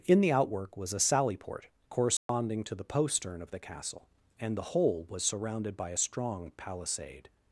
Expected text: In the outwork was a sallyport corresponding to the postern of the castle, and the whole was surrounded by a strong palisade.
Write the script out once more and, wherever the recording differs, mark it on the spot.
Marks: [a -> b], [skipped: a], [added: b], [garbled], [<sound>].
In the outwork was a sallyport corresponding [dropout] to the postern of the castle, and the whole was surrounded by a strong palisade.